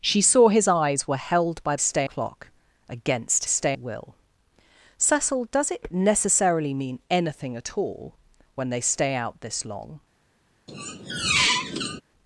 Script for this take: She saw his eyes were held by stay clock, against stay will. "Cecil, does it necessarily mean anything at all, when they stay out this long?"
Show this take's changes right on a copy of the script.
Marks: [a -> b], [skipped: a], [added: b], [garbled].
She saw his eyes were held by stay clock, against stay will. "Cecil, does it necessarily mean anything at all, when they stay out this long?"